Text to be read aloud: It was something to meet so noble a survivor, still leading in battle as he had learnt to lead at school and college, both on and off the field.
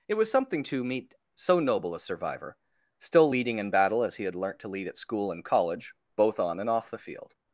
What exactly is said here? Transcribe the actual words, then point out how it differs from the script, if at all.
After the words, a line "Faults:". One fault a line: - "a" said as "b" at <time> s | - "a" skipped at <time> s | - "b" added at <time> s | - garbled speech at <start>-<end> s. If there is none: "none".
It was something to meet so noble a survivor, still leading in battle as he had learnt to lead at school and college, both on and off the field.
Faults:
none